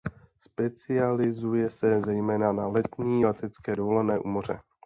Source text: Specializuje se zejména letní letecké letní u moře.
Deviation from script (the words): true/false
true